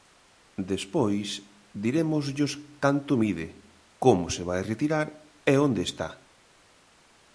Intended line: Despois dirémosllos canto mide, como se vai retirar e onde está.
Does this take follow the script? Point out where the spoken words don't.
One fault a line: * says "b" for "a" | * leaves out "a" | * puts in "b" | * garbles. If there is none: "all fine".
all fine